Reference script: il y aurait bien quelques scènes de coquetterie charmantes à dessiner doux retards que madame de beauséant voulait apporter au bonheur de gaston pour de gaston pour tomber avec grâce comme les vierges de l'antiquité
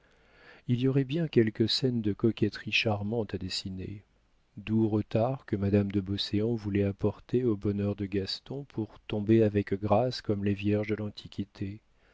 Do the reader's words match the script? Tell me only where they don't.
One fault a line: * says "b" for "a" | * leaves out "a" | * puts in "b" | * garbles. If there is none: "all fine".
* leaves out "de gaston pour"